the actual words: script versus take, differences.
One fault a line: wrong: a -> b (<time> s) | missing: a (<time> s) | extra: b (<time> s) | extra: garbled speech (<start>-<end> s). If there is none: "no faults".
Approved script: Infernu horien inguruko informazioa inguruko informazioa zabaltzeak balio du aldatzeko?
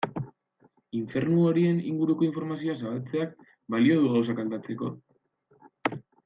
missing: inguruko informazioa (2.8 s)
extra: gauzak (4.2 s)